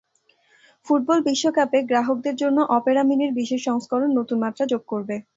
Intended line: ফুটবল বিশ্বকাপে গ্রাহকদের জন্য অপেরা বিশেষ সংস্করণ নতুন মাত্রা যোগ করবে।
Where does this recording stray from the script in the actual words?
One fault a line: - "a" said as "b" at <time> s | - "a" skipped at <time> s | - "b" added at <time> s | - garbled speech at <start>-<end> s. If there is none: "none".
- "মিনির" added at 3.1 s